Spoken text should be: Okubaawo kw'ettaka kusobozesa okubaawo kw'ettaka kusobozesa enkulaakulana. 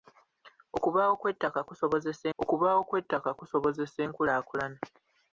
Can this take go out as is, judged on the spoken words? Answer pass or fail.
pass